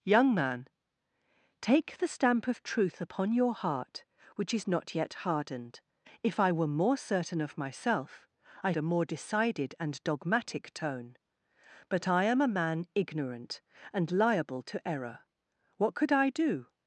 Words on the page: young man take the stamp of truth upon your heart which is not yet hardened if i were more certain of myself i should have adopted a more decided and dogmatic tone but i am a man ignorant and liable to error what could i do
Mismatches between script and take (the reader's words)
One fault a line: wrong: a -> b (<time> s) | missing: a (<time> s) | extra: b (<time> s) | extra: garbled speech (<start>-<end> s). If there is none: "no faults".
missing: should have adopted (8.7 s)